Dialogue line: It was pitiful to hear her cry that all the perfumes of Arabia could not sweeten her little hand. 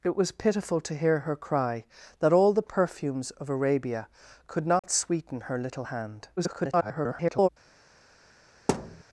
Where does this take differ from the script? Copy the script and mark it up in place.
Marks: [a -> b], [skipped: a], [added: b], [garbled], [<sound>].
It was pitiful to hear her cry that all the perfumes of Arabia could not [dropout] sweeten her little hand. [garbled] [thud]